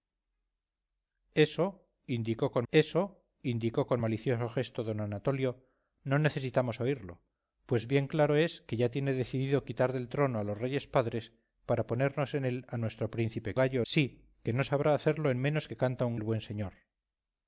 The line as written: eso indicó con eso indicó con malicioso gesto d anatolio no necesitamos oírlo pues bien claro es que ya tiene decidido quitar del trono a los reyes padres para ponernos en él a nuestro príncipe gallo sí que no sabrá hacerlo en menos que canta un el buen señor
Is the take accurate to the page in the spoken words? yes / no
yes